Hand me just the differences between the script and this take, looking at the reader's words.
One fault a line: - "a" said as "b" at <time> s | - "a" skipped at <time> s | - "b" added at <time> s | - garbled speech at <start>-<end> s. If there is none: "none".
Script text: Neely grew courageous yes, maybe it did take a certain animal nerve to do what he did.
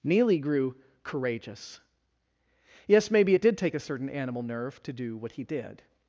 none